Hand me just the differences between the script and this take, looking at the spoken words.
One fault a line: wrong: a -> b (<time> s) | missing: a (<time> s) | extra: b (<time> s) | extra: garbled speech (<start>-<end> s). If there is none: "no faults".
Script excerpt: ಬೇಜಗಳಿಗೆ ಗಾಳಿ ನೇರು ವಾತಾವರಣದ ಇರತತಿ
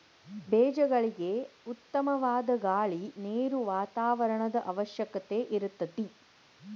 extra: ಉತ್ತಮವಾದ (1.6 s)
extra: ಅವಶ್ಯಕತೆ (4.6 s)